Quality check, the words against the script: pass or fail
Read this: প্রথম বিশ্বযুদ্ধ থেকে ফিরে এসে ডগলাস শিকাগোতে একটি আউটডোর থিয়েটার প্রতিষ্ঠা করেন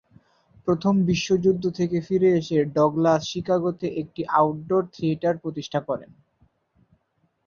pass